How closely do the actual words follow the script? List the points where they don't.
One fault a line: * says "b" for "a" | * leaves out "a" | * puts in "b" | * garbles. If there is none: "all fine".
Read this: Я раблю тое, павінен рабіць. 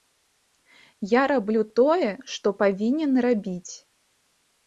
* puts in "што"